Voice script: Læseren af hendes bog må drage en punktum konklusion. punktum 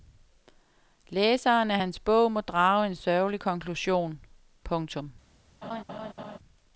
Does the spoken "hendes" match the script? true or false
false